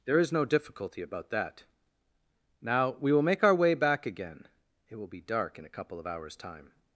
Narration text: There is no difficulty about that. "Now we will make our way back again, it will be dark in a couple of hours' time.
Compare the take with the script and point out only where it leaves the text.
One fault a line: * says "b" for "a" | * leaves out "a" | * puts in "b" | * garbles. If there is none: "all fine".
all fine